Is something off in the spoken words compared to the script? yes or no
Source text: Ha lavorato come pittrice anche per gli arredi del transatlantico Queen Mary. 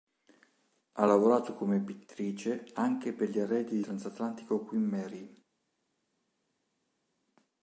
yes